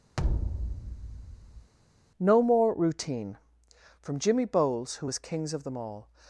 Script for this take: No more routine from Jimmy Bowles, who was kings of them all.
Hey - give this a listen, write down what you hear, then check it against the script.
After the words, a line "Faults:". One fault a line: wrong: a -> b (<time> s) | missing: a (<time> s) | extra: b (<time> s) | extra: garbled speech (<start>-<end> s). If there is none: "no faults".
No more routine from Jimmy Bowles, who was kings of them all.
Faults:
no faults